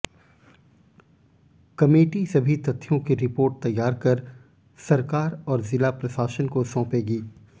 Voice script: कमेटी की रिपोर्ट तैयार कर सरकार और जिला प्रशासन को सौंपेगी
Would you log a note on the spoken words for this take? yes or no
yes